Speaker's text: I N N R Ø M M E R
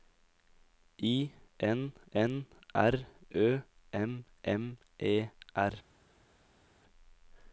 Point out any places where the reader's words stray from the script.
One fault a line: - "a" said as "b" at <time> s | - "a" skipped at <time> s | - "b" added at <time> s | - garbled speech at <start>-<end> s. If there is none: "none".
none